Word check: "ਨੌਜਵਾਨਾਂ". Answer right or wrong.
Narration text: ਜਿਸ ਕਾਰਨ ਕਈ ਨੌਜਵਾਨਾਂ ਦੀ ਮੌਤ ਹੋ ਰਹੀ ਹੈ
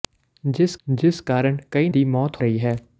wrong